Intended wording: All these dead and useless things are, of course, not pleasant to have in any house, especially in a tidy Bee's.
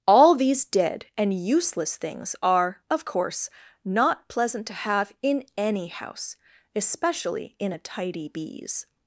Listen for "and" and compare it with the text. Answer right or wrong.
right